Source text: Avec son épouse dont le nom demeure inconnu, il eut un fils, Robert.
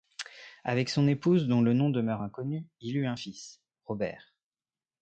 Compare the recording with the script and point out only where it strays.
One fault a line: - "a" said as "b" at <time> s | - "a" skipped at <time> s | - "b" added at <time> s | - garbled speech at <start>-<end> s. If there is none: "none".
none